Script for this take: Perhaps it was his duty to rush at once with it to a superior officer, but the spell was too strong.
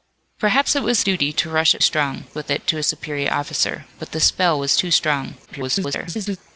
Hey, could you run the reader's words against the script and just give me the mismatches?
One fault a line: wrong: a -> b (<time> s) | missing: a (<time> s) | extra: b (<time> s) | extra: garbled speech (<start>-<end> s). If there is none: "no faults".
missing: his (1.0 s)
wrong: once -> strong (1.8 s)
extra: garbled speech (5.5-6.4 s)